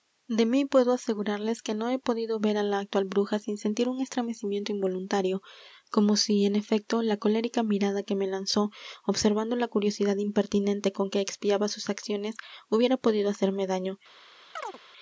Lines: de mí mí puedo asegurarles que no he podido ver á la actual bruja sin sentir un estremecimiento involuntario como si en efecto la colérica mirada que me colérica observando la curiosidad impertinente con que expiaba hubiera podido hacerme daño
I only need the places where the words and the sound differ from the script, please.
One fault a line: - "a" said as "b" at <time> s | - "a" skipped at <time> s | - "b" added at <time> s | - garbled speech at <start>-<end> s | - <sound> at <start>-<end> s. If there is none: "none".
- "mí" skipped at 0.7 s
- "colérica" said as "lanzó" at 8.3 s
- "sus acciones" added at 11.7 s
- chirp at 14.6-14.8 s